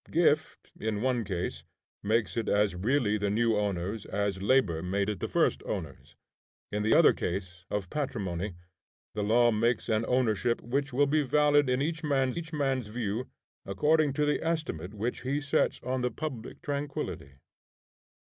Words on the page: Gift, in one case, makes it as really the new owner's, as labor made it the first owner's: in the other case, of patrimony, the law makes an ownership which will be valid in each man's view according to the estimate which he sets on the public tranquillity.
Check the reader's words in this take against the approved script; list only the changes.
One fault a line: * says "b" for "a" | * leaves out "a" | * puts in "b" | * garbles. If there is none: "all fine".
* puts in "each man's"